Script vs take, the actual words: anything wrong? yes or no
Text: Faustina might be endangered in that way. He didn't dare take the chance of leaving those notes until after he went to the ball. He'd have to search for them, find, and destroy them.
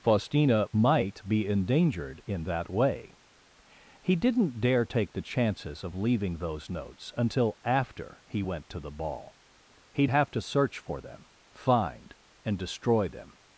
yes